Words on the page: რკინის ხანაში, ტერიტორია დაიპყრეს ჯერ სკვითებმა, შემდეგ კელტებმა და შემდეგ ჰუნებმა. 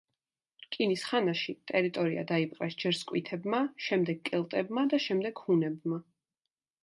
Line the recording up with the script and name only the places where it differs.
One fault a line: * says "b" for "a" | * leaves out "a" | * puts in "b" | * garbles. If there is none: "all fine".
all fine